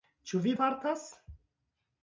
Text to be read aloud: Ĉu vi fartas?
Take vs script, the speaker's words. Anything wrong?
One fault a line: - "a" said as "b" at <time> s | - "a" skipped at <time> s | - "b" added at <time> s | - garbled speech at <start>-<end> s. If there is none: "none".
none